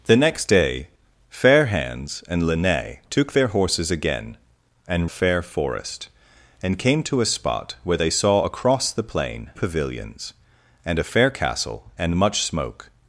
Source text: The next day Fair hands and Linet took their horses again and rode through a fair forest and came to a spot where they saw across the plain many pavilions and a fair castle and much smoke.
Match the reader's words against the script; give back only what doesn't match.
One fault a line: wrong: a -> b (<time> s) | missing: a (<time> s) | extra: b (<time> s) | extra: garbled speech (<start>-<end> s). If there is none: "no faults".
missing: rode through a (5.1 s)
missing: many (9.5 s)